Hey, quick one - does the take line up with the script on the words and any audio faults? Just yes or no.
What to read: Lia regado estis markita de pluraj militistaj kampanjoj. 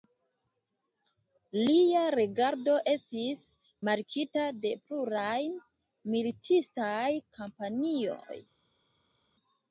yes